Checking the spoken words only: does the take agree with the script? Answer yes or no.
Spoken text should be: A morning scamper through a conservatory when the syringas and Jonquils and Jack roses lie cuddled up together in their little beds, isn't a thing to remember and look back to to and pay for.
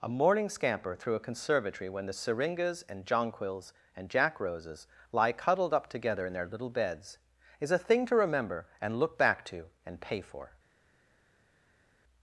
no